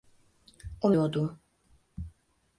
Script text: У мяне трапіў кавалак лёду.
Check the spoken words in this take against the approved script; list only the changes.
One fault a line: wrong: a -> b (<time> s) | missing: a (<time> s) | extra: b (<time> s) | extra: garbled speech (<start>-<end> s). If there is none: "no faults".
missing: мяне трапіў кавалак (0.9 s)